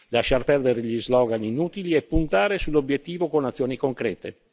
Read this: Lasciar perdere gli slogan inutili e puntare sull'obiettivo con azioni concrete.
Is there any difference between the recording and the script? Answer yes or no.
no